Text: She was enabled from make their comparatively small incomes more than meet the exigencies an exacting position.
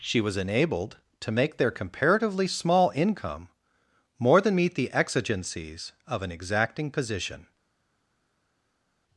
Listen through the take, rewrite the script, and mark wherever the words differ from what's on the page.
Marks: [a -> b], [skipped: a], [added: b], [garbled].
She was enabled [from -> to] make their comparatively small [incomes -> income] more than meet the exigencies [added: of] an exacting position.